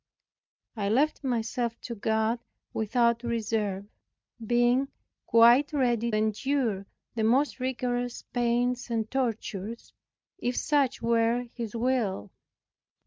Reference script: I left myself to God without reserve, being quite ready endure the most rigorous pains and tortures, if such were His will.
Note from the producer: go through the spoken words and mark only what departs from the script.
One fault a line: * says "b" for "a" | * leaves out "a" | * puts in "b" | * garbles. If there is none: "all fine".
all fine